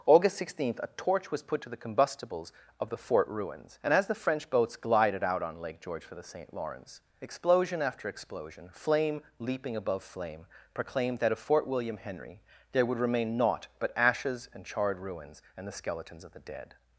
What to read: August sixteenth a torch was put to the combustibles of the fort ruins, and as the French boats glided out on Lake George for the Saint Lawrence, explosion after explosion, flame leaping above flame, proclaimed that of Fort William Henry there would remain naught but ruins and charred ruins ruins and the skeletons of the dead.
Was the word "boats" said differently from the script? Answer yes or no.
no